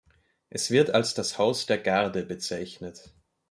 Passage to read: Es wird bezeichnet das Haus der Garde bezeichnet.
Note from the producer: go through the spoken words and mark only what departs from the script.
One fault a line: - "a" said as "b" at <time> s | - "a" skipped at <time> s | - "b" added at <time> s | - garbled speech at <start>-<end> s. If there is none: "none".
- "bezeichnet" said as "als" at 0.9 s